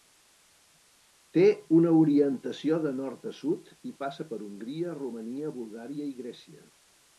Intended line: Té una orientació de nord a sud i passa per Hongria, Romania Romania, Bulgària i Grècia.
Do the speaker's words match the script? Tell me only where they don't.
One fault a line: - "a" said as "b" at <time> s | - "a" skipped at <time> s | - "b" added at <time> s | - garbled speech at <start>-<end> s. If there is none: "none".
- "Romania" skipped at 5.5 s